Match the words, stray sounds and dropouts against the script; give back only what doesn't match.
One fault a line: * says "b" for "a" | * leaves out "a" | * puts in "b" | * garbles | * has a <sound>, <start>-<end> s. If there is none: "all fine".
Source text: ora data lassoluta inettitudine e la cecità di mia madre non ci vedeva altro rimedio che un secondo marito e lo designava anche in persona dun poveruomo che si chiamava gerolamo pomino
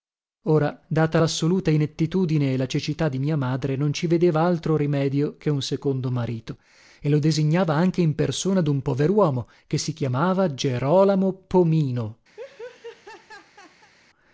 * has a laugh, 12.4-13.9 s